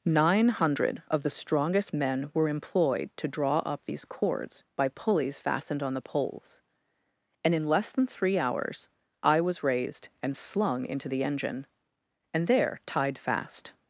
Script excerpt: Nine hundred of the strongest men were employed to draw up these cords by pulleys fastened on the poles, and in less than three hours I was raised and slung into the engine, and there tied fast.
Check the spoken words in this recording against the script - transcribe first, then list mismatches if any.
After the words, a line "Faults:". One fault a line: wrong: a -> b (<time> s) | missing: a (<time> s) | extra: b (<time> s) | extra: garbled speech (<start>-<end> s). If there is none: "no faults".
Nine hundred of the strongest men were employed to draw up these cords by pulleys fastened on the poles, and in less than three hours I was raised and slung into the engine, and there tied fast.
Faults:
no faults